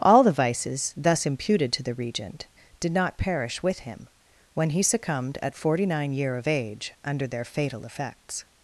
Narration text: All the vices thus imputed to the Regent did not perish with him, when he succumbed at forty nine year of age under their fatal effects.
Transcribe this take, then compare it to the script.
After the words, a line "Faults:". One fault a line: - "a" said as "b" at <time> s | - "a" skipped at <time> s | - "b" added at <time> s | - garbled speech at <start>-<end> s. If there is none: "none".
All the vices thus imputed to the Regent did not perish with him, when he succumbed at forty nine year of age under their fatal effects.
Faults:
none